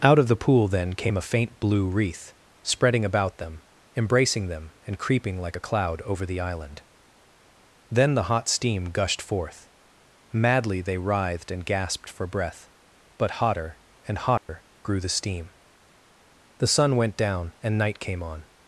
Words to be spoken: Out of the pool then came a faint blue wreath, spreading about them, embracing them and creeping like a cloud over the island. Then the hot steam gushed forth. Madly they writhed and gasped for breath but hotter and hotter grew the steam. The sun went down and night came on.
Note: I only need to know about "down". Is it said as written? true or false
true